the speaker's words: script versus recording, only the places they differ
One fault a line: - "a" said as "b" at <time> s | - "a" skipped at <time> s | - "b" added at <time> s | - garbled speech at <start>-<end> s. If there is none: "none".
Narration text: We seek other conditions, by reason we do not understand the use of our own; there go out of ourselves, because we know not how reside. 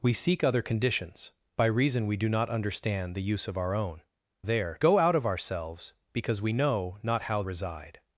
none